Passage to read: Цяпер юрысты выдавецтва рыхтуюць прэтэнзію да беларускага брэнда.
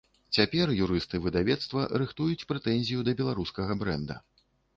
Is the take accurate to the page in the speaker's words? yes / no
yes